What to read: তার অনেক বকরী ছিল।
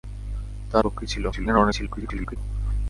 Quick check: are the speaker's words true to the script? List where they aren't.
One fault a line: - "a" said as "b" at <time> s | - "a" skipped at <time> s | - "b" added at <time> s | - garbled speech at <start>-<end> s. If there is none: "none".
- "অনেক" skipped at 0.8 s
- garbled speech at 1.3-2.4 s